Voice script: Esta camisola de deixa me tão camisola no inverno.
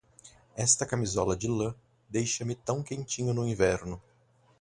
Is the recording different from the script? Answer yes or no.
yes